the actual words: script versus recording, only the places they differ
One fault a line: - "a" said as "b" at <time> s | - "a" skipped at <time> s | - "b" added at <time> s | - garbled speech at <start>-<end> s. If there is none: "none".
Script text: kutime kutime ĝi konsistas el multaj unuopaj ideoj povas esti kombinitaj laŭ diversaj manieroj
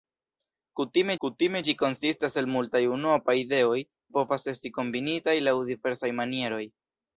none